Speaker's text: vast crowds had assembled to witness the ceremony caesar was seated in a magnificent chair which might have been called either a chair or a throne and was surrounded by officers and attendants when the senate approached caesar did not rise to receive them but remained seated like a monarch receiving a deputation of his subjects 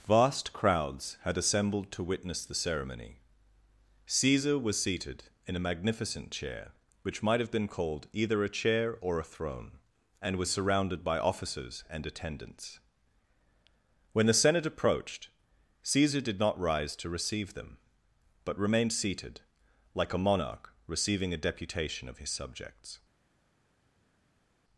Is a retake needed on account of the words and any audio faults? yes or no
no